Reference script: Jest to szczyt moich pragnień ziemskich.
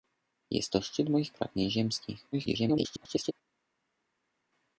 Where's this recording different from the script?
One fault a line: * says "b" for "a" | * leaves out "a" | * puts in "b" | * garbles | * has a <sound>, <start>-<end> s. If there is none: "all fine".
* garbles